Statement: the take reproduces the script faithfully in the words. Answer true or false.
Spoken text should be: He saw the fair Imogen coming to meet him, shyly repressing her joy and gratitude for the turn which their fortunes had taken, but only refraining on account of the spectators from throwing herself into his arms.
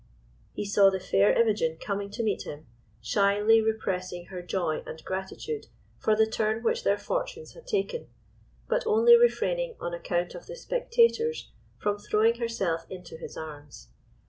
true